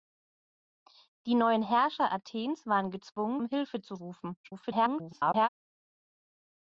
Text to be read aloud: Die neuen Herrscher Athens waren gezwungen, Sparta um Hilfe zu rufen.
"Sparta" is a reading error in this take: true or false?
true